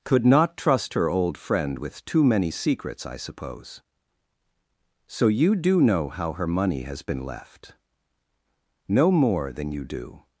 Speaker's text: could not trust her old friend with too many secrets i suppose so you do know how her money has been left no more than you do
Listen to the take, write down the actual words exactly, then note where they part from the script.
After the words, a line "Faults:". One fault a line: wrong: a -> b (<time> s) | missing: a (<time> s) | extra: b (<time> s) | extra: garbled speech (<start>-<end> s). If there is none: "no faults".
could not trust her old friend with too many secrets i suppose so you do know how her money has been left no more than you do
Faults:
no faults